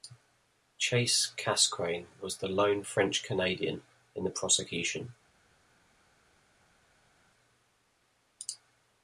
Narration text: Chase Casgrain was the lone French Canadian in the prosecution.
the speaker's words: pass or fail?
pass